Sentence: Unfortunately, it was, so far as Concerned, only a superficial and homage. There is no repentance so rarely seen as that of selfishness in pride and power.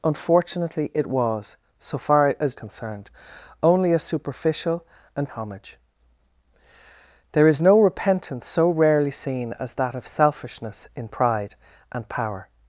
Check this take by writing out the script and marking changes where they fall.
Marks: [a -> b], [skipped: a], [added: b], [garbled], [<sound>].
Unfortunately, it was, so far as Concerned, only a superficial and homage. There is no repentance so rarely seen as that of selfishness in pride and power.